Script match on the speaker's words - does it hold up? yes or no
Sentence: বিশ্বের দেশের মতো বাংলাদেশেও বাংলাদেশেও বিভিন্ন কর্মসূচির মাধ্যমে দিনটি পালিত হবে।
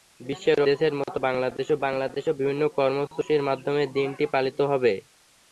yes